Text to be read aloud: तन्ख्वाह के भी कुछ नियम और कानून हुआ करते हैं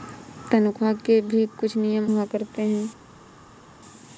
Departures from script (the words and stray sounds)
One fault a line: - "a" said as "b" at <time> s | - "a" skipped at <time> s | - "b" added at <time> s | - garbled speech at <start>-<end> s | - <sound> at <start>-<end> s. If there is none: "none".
- "और कानून" skipped at 2.1 s